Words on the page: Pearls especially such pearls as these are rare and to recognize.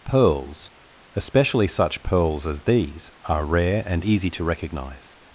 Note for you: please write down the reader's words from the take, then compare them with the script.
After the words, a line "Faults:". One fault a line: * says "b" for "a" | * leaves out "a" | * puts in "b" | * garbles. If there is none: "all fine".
Pearls especially such pearls as these are rare and easy to recognize.
Faults:
* puts in "easy"